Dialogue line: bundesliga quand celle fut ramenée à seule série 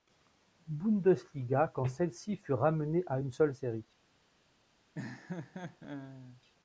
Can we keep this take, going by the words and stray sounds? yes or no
no